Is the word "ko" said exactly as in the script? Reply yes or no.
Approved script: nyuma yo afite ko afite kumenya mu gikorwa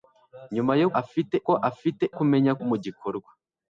yes